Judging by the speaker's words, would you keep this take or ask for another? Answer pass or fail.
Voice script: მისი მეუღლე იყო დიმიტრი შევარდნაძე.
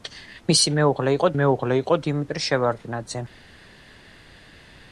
fail